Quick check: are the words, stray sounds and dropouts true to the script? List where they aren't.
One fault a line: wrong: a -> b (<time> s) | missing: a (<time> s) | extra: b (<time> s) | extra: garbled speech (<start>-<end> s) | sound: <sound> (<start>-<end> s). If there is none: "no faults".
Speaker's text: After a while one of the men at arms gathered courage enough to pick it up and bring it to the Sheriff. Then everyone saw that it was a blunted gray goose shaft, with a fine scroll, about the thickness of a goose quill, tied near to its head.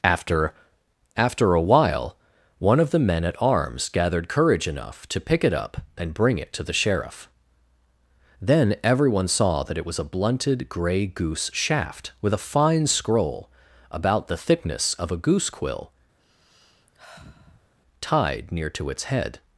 extra: after (1.1 s)
sound: sigh (16.2-17.7 s)